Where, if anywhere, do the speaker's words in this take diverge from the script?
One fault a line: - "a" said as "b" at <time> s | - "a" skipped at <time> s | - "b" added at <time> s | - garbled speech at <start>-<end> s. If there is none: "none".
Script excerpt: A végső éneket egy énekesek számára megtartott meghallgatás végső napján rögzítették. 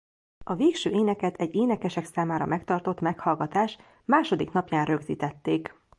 - "végső" said as "második" at 4.0 s